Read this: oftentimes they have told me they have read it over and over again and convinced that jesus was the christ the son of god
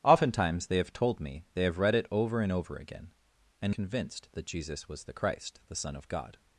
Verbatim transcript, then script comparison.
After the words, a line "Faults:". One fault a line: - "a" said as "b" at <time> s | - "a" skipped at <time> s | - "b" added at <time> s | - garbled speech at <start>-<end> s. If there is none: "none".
oftentimes they have told me they have read it over and over again and convinced that jesus was the christ the son of god
Faults:
none